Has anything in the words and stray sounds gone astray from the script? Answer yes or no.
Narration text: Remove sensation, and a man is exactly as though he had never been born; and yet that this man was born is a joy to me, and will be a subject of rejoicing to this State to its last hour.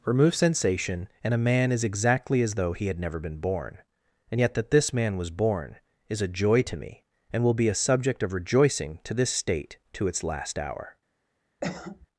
yes